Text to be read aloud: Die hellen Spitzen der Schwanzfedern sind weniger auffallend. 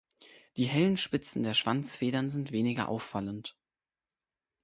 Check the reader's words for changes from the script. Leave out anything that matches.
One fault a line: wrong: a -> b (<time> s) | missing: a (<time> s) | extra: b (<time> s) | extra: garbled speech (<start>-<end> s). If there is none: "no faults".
no faults